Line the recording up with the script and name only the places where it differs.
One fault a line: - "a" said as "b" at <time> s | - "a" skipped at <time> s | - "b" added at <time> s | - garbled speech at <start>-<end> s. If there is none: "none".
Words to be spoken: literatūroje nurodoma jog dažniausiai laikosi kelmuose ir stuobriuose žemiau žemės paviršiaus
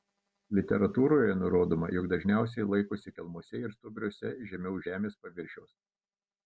none